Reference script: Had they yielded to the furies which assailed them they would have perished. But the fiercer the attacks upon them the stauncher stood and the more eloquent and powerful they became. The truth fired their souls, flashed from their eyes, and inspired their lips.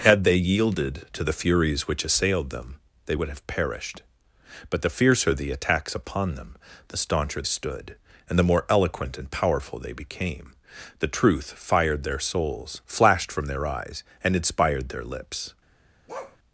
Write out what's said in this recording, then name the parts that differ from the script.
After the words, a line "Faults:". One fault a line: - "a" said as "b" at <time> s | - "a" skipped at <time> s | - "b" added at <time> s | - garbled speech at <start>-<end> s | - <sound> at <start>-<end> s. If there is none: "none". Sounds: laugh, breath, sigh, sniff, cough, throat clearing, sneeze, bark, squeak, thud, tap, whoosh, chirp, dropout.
Had they yielded to the furies which assailed them they would have perished. But the fiercer the attacks upon them the stauncher stood and the more eloquent and powerful they became. The truth fired their souls, flashed from their eyes, and inspired their lips.
Faults:
- bark at 16.1-16.4 s